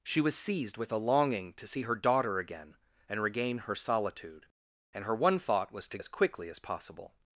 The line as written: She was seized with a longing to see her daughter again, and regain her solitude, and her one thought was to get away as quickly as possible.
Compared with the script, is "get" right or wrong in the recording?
wrong